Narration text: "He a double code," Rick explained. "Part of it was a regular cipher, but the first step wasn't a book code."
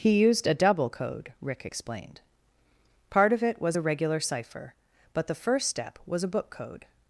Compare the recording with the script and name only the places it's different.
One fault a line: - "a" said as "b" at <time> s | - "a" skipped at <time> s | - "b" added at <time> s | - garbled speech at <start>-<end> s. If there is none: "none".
- "used" added at 0.2 s
- "wasn't" said as "was" at 6.1 s